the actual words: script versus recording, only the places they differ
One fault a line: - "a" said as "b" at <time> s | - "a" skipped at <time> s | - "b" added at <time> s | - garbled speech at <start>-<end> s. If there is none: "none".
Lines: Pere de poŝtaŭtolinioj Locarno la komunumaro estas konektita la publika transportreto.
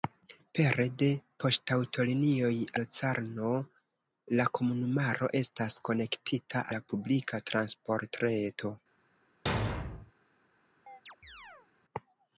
none